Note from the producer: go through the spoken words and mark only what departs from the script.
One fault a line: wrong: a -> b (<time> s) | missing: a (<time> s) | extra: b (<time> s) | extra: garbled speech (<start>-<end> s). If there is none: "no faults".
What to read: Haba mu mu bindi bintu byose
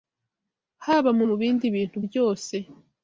no faults